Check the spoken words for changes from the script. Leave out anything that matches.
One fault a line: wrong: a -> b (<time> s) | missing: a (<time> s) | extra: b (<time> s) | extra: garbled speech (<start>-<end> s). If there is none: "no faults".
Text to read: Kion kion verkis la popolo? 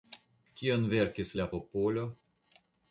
missing: kion (0.9 s)